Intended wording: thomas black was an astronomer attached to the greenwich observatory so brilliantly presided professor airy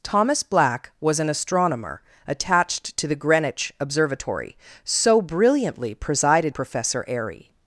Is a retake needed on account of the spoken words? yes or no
no